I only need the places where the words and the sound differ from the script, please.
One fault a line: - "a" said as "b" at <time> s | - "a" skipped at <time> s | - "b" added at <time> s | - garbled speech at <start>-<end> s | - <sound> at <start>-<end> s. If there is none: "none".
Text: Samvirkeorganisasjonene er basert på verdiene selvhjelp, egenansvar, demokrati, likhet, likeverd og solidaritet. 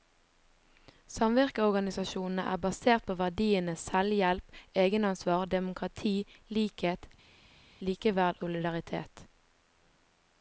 - "og" skipped at 8.4 s